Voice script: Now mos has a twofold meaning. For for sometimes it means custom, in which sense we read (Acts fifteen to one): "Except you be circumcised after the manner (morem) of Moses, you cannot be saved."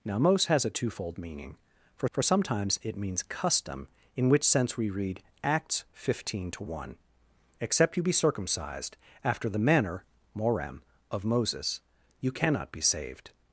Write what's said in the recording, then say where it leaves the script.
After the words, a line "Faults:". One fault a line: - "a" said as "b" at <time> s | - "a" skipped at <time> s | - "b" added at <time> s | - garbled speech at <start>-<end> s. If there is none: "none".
Now mos has a twofold meaning. For for sometimes it means custom, in which sense we read (Acts fifteen to one): "Except you be circumcised after the manner (morem) of Moses, you cannot be saved."
Faults:
none